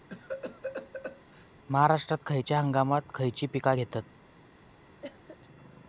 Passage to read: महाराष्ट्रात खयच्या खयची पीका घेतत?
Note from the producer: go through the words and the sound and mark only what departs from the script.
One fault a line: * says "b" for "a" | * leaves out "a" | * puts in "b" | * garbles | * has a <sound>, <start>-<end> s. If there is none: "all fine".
* has a cough, 0.1-1.5 s
* puts in "हंगामांत"
* has a cough, 5.0-5.4 s